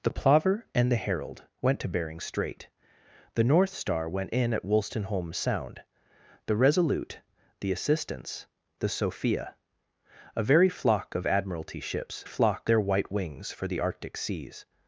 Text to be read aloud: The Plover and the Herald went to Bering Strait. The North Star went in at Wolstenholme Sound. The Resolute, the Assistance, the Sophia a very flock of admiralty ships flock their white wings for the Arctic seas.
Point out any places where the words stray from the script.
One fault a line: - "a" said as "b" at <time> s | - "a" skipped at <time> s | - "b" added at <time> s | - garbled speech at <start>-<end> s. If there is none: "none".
none